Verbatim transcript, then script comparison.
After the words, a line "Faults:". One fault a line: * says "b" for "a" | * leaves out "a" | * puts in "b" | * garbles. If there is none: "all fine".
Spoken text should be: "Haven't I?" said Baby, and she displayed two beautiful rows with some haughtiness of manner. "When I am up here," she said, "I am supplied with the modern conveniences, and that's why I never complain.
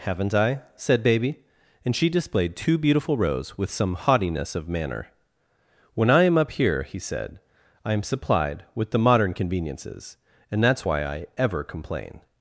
"Haven't I?" said Baby, and she displayed two beautiful rows with some haughtiness of manner. "When I am up here," he said, "I am supplied with the modern conveniences, and that's why I ever complain.
Faults:
* says "he" for "she"
* says "ever" for "never"